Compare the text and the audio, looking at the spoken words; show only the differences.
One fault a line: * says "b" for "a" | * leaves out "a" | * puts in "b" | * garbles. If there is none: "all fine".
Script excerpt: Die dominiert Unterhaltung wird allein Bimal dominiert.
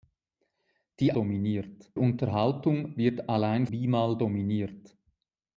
all fine